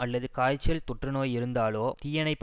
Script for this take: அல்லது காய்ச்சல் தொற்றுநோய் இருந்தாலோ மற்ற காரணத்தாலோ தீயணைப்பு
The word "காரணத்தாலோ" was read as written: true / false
false